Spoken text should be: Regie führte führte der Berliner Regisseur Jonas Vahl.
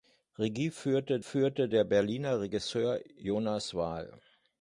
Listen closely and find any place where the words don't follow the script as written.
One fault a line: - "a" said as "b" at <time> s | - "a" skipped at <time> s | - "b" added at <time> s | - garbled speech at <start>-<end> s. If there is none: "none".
none